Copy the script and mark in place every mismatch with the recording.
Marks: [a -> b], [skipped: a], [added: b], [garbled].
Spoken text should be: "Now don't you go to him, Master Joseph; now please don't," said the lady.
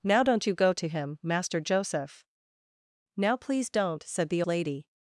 "Now don't you go to him, Master Joseph; now please don't," said the lady.